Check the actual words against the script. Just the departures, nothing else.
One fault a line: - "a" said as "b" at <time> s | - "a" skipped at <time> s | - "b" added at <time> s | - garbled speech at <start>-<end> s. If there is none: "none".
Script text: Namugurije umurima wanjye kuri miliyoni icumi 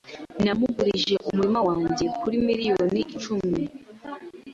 none